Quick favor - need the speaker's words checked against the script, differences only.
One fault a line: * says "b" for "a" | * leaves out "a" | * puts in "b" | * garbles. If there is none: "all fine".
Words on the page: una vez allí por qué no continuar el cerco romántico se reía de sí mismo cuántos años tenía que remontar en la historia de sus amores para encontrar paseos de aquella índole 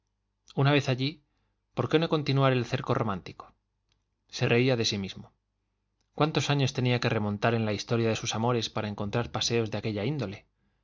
all fine